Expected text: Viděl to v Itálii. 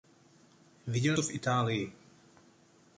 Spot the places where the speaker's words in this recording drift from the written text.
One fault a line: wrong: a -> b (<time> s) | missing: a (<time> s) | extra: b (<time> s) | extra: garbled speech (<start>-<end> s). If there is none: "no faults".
no faults